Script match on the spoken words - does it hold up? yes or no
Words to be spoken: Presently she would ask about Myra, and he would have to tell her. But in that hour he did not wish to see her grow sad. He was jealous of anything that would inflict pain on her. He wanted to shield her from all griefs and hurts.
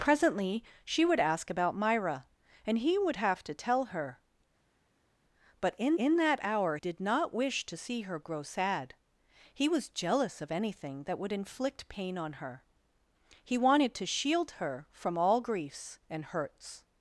no